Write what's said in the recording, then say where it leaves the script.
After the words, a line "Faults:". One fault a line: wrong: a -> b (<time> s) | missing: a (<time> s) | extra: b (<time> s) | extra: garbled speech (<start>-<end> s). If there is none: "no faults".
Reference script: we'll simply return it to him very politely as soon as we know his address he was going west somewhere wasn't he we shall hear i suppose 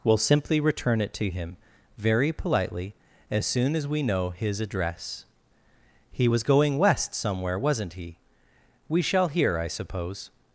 we'll simply return it to him very politely as soon as we know his address he was going west somewhere wasn't he we shall hear i suppose
Faults:
no faults